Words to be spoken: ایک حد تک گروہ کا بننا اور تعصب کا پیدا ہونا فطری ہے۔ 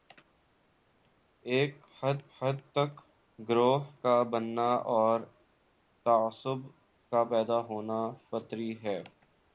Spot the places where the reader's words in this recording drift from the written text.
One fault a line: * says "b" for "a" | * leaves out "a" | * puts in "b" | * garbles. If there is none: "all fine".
* puts in "حد"